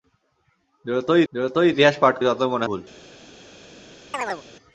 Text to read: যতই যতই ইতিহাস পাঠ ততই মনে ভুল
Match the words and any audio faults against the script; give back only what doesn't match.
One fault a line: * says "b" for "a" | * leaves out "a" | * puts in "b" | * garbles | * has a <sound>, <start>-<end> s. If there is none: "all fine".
* has a chirp, 4.1-4.4 s